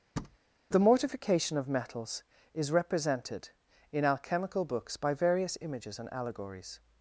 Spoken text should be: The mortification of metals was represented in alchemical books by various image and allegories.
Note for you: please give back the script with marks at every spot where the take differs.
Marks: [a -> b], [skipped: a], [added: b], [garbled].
The mortification of metals [was -> is] represented in alchemical books by various [image -> images] and allegories.